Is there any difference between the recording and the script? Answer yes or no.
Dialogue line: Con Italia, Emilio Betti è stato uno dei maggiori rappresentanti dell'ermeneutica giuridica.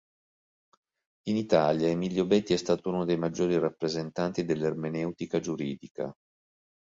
yes